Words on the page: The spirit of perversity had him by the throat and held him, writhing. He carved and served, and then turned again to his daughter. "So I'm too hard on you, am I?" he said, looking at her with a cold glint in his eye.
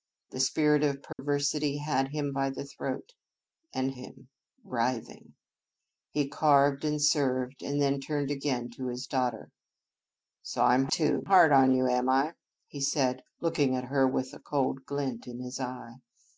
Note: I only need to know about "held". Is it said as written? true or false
false